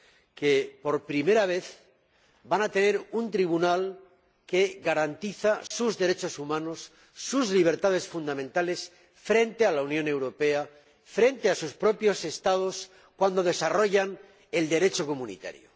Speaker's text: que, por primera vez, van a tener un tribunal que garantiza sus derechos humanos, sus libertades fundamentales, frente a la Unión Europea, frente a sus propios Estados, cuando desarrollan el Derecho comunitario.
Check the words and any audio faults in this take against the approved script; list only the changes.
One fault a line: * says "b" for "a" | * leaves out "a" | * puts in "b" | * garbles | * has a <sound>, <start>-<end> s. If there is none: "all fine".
* has a dropout, 5.7-5.7 s